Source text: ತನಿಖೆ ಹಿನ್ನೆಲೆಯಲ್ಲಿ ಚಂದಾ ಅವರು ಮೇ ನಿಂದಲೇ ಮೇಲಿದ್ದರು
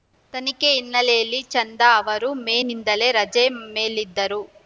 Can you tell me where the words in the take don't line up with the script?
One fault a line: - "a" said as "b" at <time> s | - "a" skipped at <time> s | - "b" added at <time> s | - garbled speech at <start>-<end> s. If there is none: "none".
- "ರಜೆ" added at 3.1 s